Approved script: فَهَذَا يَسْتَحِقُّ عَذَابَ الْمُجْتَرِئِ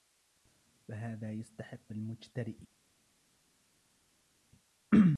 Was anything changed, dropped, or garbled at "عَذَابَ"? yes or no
yes